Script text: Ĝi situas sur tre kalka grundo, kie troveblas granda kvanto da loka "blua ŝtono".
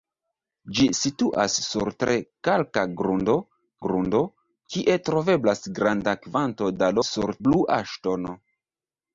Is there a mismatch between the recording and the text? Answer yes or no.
yes